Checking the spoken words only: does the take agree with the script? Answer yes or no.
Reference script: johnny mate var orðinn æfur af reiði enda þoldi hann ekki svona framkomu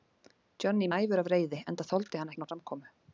no